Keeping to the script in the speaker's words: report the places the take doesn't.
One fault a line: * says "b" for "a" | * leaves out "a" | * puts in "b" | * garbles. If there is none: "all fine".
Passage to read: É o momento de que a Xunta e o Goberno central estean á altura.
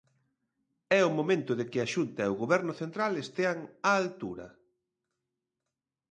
all fine